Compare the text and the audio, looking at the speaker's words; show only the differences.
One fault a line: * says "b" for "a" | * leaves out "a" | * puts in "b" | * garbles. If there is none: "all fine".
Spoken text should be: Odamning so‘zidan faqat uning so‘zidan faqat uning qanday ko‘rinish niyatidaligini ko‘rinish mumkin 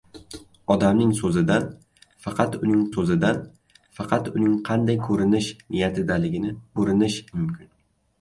all fine